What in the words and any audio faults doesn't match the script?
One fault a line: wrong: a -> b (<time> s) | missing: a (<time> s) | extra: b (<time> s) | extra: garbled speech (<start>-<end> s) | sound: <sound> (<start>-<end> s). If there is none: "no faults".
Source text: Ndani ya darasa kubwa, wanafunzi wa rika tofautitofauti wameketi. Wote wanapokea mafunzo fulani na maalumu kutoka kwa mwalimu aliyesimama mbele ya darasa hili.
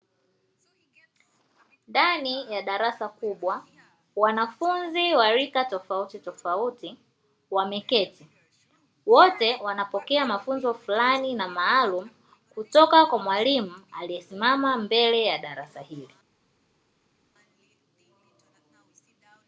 no faults